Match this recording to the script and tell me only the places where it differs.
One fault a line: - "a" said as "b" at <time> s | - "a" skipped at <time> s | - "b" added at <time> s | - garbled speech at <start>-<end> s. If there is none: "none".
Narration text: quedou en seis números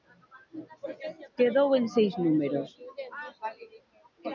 none